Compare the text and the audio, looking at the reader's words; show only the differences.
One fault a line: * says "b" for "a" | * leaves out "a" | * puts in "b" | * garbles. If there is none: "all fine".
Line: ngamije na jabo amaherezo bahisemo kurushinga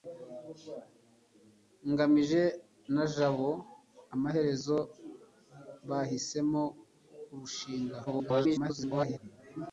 * garbles